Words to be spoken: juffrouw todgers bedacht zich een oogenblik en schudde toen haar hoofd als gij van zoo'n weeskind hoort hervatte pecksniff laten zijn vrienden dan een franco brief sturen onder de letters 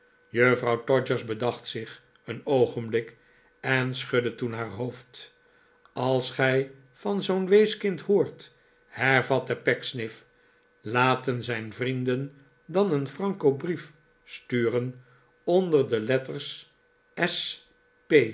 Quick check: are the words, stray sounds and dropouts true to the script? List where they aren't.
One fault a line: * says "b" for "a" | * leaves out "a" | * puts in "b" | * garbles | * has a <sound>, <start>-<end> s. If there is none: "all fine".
all fine